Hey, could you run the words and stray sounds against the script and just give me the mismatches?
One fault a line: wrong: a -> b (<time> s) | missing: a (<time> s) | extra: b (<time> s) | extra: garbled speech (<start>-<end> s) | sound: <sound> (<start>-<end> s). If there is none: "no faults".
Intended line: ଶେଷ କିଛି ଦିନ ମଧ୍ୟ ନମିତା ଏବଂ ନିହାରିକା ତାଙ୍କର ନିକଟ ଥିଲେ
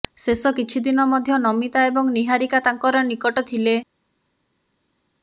no faults